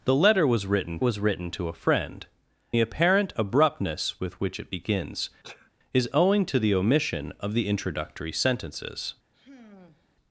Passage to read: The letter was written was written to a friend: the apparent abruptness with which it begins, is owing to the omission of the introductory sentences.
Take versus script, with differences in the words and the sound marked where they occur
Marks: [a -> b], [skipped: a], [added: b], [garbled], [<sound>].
The letter was written was written to a friend: the apparent abruptness with which it begins, [sneeze] is owing to the omission of the introductory sentences. [sigh]